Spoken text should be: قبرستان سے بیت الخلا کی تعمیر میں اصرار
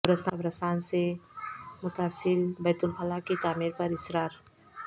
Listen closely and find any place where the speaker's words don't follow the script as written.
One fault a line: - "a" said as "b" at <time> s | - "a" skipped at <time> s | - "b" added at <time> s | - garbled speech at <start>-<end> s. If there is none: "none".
- "متصل" added at 1.8 s
- "میں" said as "پر" at 3.8 s